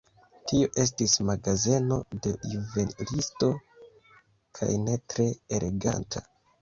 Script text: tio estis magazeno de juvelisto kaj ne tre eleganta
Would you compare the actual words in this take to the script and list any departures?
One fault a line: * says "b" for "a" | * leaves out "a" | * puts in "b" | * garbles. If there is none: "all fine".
all fine